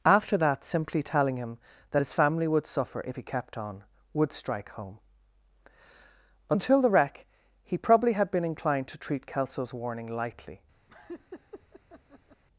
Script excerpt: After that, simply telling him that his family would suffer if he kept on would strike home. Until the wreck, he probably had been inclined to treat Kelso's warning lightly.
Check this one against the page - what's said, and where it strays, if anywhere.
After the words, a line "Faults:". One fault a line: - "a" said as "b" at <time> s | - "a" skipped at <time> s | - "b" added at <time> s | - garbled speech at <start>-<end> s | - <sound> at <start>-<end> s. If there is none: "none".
After that, simply telling him that his family would suffer if he kept on would strike home. Until the wreck, he probably had been inclined to treat Kelso's warning lightly.
Faults:
- laugh at 10.9-12.4 s